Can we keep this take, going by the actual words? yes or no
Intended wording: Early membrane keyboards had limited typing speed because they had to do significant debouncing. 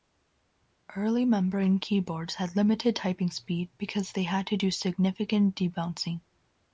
yes